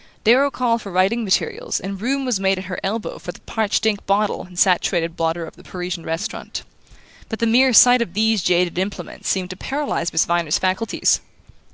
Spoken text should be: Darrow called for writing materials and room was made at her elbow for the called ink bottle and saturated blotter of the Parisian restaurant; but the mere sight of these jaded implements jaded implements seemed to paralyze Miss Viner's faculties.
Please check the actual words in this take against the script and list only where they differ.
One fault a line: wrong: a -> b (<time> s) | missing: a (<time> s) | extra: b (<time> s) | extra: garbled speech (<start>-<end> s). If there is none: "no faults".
wrong: called -> parched (3.4 s)
missing: jaded implements (9.3 s)